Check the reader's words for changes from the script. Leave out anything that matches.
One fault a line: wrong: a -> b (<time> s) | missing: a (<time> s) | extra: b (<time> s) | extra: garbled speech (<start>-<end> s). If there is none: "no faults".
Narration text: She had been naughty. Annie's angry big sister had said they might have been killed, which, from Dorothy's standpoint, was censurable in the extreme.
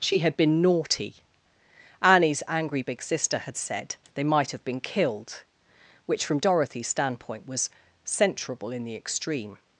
no faults